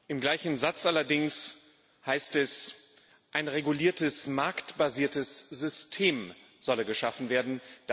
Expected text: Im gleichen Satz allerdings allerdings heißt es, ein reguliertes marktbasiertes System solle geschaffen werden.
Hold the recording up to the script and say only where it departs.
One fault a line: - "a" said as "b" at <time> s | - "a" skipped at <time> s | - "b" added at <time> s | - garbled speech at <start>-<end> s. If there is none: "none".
- "allerdings" skipped at 1.6 s